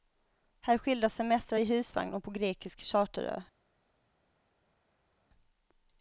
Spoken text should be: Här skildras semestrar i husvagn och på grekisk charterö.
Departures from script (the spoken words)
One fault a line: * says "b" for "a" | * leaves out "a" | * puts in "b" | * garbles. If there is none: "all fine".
all fine